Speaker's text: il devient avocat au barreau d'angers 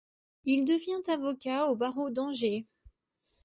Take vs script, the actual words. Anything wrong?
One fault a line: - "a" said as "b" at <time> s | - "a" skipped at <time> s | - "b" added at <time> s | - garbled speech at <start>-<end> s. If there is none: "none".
none